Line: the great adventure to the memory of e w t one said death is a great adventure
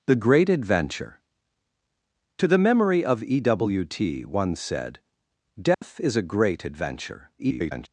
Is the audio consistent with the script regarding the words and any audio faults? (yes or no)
no